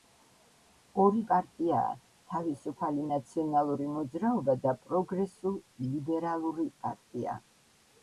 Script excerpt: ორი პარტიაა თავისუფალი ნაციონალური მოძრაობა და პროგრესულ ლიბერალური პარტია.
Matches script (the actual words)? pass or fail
pass